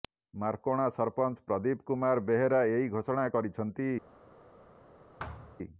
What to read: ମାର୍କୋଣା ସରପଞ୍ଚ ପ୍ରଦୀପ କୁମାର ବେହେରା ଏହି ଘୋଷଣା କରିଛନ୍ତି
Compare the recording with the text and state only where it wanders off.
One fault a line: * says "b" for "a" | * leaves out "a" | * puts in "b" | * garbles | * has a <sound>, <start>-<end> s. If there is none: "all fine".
* has a thud, 5.2-5.6 s